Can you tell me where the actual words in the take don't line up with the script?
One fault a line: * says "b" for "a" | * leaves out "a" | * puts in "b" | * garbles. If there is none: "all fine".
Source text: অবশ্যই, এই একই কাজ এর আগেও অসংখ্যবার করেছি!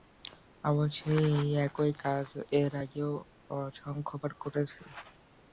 all fine